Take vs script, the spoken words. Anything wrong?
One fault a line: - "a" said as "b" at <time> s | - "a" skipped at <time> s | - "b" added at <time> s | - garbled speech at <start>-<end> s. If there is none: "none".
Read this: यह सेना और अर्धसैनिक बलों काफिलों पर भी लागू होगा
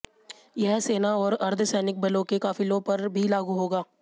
- "के" added at 2.2 s